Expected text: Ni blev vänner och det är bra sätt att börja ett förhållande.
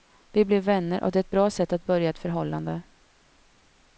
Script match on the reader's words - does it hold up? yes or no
no